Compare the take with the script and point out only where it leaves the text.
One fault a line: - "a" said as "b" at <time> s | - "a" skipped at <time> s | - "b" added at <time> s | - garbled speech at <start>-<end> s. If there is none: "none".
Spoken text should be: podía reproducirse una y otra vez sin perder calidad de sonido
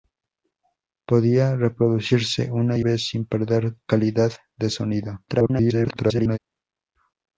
- "otra" skipped at 2.9 s
- garbled speech at 5.3-6.4 s